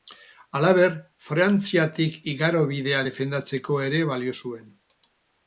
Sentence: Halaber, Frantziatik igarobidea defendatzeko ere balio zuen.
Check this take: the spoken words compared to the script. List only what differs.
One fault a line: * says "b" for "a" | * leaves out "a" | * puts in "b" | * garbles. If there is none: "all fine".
all fine